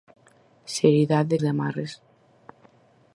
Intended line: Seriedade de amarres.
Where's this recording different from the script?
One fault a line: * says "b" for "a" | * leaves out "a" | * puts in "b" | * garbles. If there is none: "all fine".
all fine